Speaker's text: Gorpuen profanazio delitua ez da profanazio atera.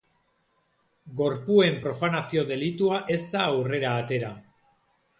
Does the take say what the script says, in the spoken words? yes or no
no